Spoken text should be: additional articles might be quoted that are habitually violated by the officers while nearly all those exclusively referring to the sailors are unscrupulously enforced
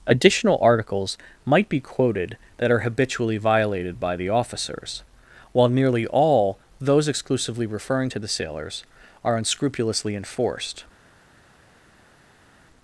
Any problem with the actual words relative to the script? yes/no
no